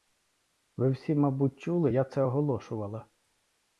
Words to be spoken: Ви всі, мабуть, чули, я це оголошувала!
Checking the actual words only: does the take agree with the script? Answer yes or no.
yes